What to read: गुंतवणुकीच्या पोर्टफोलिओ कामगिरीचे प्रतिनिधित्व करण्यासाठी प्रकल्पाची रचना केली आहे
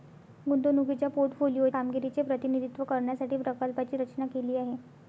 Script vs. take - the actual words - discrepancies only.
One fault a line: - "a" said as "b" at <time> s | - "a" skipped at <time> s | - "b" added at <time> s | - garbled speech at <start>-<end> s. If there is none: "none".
none